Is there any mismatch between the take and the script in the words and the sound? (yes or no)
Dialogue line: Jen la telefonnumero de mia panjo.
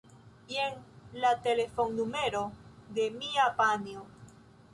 no